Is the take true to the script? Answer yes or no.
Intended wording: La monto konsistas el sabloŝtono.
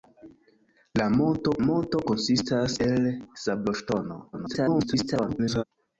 no